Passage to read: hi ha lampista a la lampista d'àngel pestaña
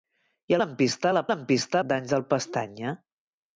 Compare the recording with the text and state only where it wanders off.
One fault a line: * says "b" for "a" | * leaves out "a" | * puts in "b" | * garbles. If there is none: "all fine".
all fine